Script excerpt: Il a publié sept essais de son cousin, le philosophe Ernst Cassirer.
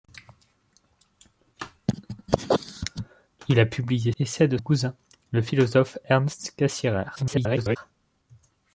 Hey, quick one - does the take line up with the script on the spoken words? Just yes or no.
no